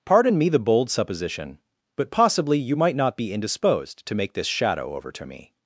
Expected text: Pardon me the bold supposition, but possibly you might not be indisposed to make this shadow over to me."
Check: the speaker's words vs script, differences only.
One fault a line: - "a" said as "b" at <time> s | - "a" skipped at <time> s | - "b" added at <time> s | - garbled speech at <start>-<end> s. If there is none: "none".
none